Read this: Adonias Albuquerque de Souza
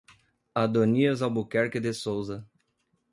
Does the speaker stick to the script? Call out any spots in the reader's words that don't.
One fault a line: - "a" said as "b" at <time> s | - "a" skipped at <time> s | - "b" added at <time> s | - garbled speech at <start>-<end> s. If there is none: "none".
none